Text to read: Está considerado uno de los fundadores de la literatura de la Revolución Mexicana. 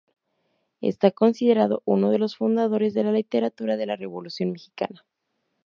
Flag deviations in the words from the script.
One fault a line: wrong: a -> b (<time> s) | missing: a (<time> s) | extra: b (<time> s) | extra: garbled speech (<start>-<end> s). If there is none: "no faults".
no faults